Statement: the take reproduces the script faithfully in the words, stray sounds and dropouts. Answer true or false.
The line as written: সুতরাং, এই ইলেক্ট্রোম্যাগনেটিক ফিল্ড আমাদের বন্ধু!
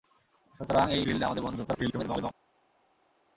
false